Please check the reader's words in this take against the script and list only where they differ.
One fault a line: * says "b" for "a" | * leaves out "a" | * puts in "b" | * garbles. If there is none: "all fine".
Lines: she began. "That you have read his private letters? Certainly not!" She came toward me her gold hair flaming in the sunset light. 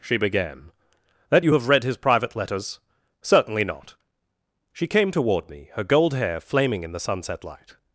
all fine